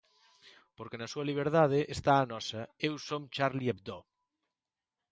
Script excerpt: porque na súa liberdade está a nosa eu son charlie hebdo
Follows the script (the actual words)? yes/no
yes